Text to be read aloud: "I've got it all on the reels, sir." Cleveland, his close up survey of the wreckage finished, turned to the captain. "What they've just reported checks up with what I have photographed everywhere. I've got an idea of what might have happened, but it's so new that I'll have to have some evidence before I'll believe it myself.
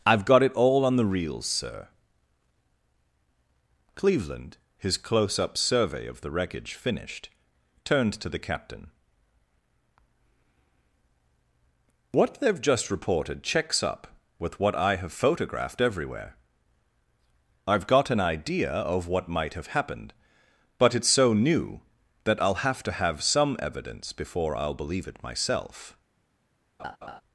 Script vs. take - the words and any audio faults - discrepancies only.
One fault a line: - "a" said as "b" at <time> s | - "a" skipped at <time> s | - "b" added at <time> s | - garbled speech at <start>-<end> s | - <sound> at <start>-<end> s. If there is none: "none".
- laugh at 26.8-27.2 s